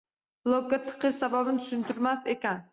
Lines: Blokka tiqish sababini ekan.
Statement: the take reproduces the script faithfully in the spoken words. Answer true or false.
false